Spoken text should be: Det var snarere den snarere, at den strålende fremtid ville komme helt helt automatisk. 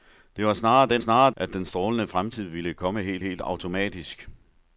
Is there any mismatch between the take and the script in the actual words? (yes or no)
no